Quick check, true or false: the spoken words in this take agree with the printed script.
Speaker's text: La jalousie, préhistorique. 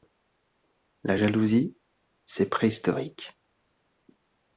false